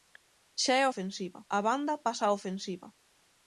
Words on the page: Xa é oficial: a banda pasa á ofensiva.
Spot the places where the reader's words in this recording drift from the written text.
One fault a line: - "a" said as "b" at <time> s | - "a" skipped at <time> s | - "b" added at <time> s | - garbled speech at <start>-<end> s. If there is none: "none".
- "oficial" said as "ofensiva" at 0.9 s